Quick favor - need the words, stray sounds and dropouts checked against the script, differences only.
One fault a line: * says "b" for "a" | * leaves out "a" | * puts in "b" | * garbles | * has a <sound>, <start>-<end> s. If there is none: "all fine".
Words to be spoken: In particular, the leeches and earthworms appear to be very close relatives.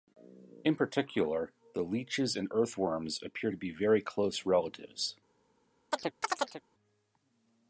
* has a chirp, 5.9-6.6 s